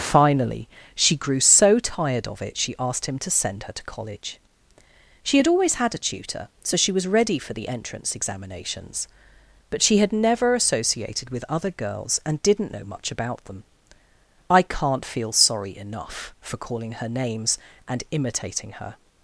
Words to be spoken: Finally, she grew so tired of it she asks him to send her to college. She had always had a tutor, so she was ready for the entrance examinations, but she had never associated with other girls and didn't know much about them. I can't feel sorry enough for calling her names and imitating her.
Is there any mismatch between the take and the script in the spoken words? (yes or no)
yes